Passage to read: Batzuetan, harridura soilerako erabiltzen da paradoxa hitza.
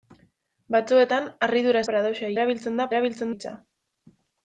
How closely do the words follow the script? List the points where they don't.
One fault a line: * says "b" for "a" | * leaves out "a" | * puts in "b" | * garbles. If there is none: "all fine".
* says "paradoxa" for "soilerako"
* says "erabiltzen" for "paradoxa"